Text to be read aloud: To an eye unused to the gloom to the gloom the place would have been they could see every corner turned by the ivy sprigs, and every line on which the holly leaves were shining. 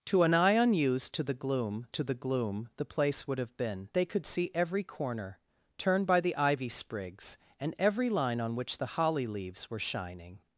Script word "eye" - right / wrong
right